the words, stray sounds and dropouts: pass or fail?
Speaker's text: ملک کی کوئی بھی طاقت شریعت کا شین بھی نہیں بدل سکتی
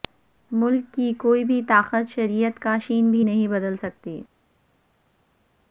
pass